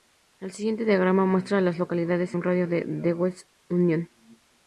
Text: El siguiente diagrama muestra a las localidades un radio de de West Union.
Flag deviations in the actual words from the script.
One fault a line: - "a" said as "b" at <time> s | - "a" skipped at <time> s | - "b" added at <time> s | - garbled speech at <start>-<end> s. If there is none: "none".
none